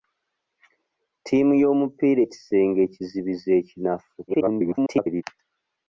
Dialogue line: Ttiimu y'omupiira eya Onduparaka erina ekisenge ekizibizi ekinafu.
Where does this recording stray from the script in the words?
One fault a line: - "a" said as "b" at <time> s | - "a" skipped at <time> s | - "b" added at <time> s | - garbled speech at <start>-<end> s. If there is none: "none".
- "eya Onduparaka erina" skipped at 2.2 s
- garbled speech at 4.3-5.2 s